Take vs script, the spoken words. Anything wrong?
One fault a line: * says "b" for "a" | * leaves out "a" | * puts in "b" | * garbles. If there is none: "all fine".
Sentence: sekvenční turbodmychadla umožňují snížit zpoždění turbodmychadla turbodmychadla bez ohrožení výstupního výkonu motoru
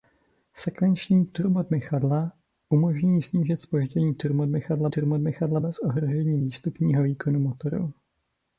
all fine